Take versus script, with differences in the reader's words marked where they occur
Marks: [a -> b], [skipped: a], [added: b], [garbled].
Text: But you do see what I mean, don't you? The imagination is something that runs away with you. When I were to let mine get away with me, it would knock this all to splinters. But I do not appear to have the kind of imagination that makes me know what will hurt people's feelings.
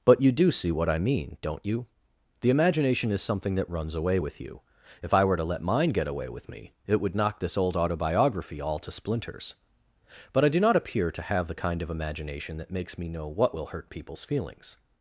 But you do see what I mean, don't you? The imagination is something that runs away with you. [When -> If] I were to let mine get away with me, it would knock this [added: old autobiography] all to splinters. But I do not appear to have the kind of imagination that makes me know what will hurt people's feelings.